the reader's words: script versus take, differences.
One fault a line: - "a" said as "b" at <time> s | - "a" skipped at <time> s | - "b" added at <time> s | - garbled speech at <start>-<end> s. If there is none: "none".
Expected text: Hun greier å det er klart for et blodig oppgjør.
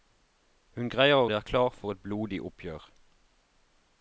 none